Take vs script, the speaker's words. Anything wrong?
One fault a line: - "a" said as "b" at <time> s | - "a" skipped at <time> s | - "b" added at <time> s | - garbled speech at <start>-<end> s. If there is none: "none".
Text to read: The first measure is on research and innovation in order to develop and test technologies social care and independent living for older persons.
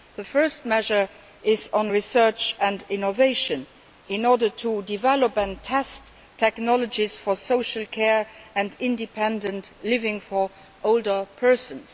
- "for" added at 7.2 s